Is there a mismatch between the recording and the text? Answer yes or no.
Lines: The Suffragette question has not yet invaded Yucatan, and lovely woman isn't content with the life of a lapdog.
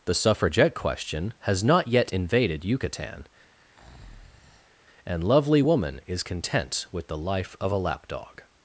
yes